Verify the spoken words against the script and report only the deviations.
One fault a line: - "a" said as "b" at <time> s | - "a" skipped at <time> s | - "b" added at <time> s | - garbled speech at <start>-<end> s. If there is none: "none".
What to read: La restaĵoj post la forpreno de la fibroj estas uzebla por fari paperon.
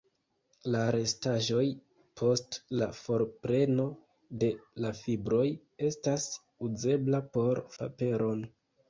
- "fari" skipped at 7.6 s